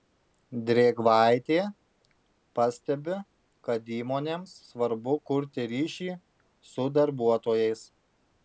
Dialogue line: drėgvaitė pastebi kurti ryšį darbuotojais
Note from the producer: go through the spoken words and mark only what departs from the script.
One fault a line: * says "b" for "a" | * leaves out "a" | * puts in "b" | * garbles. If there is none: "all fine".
* puts in "kad įmonėms svarbu"
* puts in "su"